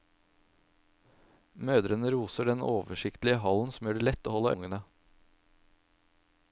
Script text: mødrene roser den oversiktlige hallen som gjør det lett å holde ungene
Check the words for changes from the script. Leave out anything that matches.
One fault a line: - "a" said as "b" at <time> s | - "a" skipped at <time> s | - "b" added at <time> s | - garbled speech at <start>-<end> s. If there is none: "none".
none